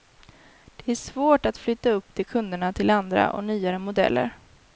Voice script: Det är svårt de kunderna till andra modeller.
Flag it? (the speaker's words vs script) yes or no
yes